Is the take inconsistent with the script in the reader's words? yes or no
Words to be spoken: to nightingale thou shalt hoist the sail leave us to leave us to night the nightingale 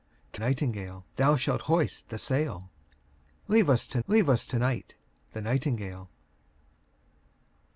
no